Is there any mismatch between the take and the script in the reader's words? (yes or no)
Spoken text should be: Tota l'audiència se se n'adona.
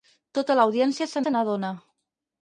no